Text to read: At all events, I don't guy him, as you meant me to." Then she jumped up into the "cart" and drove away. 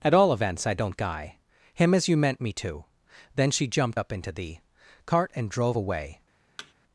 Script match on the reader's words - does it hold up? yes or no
yes